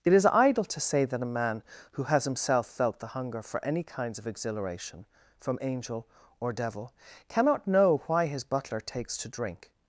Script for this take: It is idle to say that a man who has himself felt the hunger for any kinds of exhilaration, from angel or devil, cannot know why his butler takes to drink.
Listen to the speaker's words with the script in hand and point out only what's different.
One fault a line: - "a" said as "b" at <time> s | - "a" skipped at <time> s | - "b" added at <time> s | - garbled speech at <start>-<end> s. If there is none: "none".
none